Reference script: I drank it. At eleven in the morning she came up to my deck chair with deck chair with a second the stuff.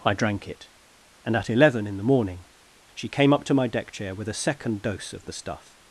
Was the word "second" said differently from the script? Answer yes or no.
yes